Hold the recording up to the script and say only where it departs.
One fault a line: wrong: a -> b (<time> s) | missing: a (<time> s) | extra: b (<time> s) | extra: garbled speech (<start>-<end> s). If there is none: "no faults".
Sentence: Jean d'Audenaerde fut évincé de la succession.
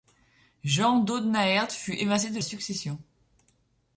missing: la (2.4 s)